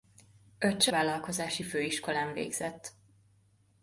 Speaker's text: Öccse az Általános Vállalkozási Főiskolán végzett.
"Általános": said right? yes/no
no